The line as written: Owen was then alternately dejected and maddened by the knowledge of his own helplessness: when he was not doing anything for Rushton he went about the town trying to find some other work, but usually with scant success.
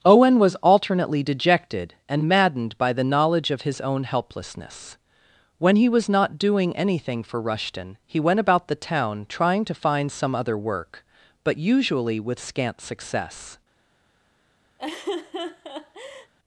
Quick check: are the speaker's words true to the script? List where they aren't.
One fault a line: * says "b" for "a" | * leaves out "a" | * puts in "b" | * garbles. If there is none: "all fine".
* leaves out "then"